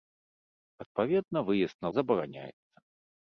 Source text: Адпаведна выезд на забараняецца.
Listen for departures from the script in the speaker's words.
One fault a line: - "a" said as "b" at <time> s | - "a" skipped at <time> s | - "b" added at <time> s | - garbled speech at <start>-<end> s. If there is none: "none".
none